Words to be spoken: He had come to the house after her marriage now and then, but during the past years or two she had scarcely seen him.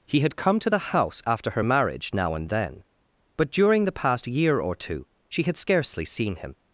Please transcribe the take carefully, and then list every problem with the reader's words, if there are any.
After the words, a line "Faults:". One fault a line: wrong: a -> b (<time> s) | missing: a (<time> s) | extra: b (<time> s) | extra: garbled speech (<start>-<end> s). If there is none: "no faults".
He had come to the house after her marriage now and then, but during the past year or two she had scarcely seen him.
Faults:
wrong: years -> year (4.3 s)